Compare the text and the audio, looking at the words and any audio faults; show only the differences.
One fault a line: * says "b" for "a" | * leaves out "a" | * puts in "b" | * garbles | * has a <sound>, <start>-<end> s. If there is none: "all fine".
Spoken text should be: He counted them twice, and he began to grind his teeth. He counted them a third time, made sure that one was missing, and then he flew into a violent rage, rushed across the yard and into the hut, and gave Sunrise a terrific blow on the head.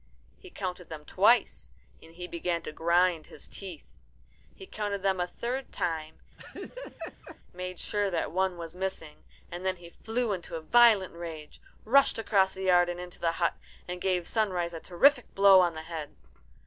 * has a laugh, 6.4-7.4 s